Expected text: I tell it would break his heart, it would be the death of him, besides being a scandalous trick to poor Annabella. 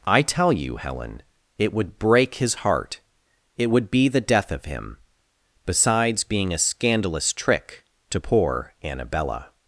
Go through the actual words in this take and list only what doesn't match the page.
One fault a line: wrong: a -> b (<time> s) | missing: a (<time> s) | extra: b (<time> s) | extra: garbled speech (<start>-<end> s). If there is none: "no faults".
extra: you Helen (0.5 s)